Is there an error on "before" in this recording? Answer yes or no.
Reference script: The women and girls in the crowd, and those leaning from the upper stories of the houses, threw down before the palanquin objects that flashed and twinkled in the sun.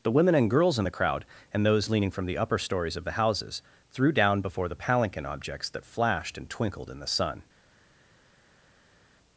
no